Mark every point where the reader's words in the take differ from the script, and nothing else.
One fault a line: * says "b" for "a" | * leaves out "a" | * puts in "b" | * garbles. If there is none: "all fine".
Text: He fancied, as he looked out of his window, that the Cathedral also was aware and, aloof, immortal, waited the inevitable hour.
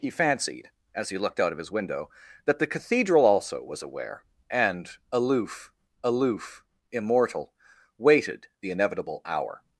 * puts in "aloof"